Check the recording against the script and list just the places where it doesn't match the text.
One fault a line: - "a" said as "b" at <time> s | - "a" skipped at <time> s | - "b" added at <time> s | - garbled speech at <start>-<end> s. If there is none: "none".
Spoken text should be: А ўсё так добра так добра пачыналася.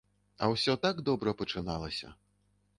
- "так добра" skipped at 1.3 s